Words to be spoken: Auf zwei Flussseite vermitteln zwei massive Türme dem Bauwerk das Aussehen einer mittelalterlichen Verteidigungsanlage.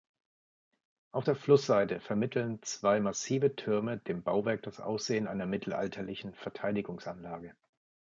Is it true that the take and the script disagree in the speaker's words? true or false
true